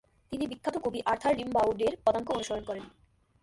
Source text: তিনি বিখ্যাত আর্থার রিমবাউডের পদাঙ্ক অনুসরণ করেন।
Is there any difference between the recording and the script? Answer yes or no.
yes